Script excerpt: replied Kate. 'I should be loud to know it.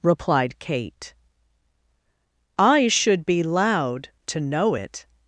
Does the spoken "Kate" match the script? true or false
true